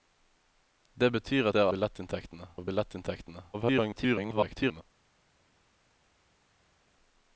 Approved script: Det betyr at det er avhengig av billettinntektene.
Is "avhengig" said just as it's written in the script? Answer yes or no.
no